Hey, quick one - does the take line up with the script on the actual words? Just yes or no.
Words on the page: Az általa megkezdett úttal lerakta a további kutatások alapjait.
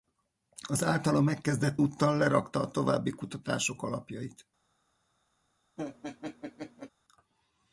yes